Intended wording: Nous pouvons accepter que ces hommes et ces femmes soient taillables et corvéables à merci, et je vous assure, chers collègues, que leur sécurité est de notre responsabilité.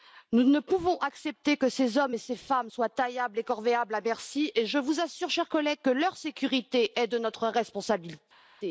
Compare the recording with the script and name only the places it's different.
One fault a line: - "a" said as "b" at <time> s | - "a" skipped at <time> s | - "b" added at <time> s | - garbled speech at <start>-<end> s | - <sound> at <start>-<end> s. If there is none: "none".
- "ne" added at 0.4 s